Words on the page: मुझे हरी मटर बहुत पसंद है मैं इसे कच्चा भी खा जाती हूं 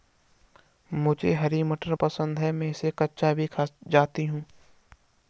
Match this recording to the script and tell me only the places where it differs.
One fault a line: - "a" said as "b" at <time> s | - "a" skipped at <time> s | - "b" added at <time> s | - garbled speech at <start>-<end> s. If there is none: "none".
- "बहुत" skipped at 1.9 s